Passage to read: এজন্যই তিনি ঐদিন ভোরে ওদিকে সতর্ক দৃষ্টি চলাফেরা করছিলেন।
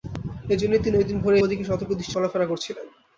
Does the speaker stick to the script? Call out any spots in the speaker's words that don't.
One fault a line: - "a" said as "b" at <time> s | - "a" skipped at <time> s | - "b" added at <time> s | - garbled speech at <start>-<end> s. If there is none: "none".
none